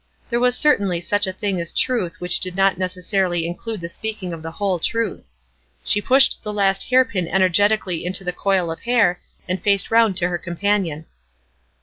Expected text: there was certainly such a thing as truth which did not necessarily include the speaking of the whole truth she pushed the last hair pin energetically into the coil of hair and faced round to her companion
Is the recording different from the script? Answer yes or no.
no